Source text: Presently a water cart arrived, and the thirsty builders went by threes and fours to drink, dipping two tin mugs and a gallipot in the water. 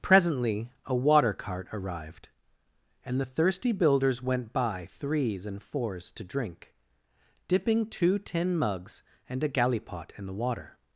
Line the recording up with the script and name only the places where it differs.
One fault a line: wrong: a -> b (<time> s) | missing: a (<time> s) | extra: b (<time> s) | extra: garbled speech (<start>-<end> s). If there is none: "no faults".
no faults